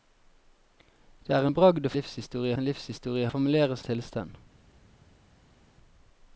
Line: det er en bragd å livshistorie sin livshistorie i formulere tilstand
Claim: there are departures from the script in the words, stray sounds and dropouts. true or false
false